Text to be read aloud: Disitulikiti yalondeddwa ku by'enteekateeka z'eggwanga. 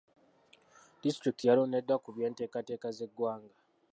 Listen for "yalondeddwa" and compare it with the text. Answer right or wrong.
right